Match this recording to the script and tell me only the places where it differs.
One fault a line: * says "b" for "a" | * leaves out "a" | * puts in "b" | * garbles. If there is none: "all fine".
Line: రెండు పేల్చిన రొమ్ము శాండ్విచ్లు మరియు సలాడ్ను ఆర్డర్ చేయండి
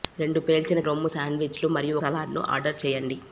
all fine